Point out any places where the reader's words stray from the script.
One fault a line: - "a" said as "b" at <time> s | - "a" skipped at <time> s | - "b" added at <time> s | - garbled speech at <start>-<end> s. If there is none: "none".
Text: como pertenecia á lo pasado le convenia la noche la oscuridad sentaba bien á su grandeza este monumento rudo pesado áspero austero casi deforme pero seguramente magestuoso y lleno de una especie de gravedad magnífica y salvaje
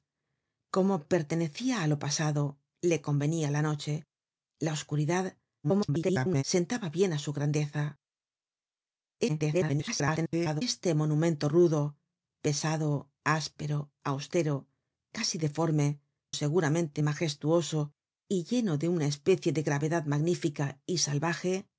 - garbled speech at 5.6-6.4 s
- garbled speech at 9.3-10.6 s
- "pero" skipped at 16.0 s